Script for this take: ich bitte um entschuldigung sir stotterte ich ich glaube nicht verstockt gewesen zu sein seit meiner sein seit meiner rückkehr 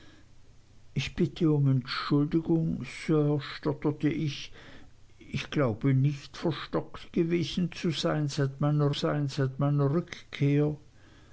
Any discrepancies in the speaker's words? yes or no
no